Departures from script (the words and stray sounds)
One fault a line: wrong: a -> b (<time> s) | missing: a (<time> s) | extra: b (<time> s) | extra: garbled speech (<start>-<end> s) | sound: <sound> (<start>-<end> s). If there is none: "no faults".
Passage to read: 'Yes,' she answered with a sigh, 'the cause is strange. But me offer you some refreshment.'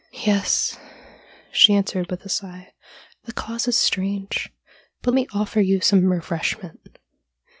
no faults